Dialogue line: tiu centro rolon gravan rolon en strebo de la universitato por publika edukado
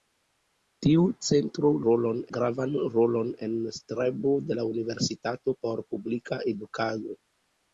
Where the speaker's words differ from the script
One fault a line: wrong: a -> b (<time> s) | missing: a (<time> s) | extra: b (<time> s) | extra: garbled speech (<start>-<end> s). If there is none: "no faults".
no faults